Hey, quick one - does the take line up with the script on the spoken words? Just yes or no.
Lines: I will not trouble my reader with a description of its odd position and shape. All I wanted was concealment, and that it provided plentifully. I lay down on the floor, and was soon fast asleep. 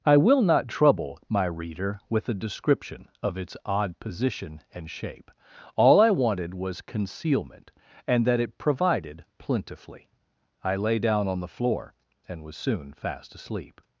yes